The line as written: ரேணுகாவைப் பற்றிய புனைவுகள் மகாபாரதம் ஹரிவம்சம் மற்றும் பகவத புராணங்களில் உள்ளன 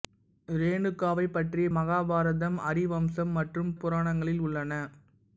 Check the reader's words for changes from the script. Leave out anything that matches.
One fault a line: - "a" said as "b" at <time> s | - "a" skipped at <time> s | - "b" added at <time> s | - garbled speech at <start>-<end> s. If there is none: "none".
- "புனைவுகள்" skipped at 1.7 s
- "பகவத" skipped at 3.7 s